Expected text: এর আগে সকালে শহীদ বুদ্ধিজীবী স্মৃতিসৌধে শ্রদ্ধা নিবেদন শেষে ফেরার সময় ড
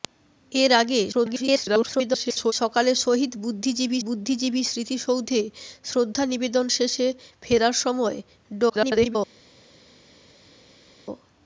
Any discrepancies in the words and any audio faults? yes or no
yes